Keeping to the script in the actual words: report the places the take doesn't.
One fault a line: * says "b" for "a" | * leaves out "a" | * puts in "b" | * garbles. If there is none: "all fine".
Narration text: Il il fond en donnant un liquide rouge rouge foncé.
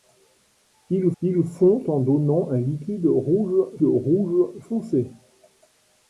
all fine